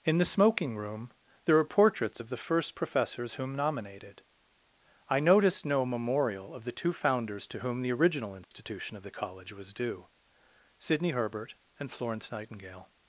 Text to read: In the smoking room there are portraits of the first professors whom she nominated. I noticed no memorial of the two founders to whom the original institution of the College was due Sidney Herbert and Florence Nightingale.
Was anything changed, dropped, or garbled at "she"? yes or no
yes